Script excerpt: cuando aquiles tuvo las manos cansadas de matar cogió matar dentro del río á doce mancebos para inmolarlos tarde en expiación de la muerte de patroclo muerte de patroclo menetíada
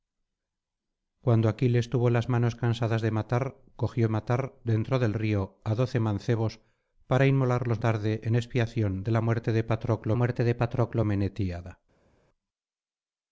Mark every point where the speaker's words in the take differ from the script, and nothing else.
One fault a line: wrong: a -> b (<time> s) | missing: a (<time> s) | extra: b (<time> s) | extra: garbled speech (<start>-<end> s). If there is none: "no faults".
no faults